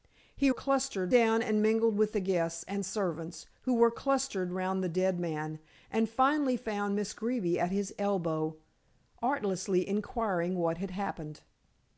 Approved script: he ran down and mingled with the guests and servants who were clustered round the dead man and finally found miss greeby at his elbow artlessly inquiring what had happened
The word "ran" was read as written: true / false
false